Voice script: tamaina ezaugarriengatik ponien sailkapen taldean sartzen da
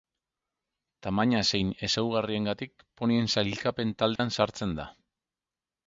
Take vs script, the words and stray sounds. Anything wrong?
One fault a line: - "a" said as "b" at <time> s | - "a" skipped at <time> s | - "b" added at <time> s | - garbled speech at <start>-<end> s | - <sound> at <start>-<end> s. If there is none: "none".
- "zein" added at 1.5 s
- dropout at 4.2-4.2 s